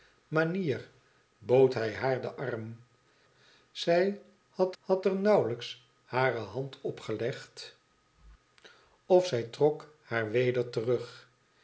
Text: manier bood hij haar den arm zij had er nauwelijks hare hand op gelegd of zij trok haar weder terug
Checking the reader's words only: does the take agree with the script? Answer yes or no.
no